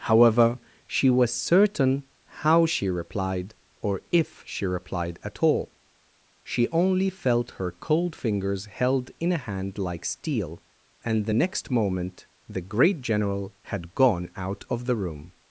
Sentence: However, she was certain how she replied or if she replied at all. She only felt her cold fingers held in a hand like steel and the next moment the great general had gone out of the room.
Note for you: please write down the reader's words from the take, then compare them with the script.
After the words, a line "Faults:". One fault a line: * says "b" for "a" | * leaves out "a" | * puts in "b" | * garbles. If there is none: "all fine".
However, she was certain how she replied or if she replied at all. She only felt her cold fingers held in a hand like steel and the next moment the great general had gone out of the room.
Faults:
all fine